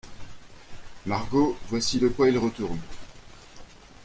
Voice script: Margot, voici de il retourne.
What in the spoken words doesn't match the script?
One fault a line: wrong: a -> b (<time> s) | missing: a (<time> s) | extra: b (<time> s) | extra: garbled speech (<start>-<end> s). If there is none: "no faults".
extra: quoi (2.1 s)